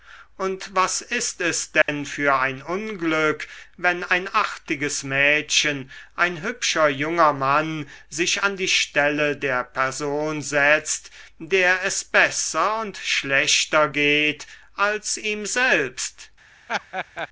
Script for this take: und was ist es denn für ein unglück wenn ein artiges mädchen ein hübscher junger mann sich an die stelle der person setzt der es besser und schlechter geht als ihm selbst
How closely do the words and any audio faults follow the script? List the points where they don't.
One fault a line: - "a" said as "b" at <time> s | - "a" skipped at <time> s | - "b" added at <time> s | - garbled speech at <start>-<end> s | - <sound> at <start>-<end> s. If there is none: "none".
- dropout at 1.8-1.9 s
- laugh at 16.7-17.3 s